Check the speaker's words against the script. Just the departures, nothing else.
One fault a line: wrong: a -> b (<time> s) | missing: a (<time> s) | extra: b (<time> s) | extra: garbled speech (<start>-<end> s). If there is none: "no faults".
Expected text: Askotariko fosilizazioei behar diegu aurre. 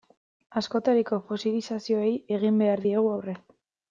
extra: egin (2.4 s)